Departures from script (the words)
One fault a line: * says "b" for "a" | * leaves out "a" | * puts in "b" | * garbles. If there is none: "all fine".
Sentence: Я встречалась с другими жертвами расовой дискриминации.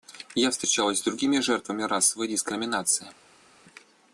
all fine